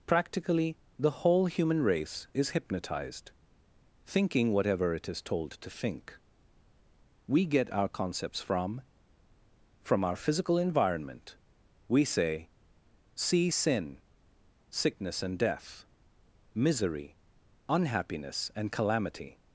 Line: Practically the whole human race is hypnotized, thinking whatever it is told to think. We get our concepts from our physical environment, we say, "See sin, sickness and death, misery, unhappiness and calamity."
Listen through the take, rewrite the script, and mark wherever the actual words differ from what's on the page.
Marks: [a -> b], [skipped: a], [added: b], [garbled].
Practically the whole human race is hypnotized, thinking whatever it is told to think. We get our concepts from [added: from] our physical environment, we say, "See sin, sickness and death, misery, unhappiness and calamity."